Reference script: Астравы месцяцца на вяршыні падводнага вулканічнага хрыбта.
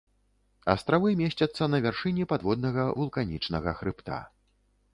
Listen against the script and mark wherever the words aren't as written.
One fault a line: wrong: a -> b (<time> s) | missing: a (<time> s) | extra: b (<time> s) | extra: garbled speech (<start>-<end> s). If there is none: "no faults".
no faults